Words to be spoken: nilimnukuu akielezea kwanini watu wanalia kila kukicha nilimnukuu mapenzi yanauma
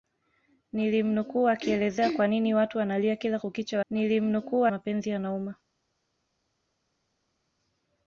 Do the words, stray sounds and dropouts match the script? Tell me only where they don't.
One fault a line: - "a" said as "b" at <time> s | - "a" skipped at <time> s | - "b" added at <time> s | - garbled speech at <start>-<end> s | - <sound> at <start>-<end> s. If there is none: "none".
none